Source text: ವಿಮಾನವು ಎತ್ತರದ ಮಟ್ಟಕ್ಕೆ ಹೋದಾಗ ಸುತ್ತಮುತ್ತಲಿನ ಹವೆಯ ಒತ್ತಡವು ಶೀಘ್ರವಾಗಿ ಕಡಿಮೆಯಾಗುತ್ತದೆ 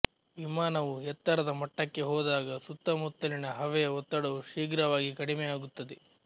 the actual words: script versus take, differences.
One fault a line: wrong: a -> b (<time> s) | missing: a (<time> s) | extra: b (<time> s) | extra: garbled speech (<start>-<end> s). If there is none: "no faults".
no faults